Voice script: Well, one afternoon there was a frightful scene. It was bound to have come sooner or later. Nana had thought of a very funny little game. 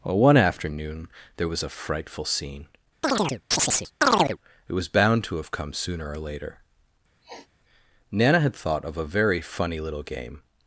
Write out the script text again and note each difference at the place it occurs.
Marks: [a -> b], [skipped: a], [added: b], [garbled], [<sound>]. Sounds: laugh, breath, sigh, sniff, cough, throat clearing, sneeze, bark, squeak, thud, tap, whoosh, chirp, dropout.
Well, one afternoon there was a frightful scene. [chirp] It was bound to have come sooner or later. [sniff] Nana had thought of a very funny little game.